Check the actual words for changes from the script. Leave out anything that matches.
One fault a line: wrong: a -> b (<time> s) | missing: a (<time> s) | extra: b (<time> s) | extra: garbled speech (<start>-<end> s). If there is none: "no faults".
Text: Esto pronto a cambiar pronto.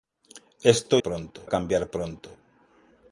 no faults